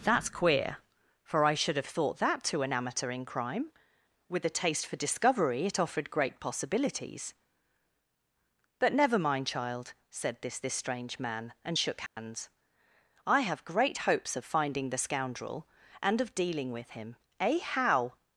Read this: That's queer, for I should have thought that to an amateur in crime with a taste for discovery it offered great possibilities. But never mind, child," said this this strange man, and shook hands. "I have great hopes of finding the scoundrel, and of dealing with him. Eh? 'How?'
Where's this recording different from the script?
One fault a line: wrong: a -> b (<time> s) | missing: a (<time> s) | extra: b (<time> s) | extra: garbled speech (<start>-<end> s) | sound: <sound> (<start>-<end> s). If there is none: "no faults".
sound: dropout (12.1-12.2 s)